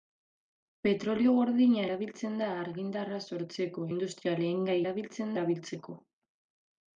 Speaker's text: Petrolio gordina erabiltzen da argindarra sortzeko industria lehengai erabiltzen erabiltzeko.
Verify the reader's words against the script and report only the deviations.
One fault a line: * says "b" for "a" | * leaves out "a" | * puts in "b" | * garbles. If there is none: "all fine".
all fine